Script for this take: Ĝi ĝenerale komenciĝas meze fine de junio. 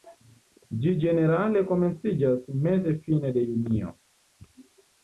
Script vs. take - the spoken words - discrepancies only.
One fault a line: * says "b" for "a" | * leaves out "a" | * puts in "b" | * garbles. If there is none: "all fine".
all fine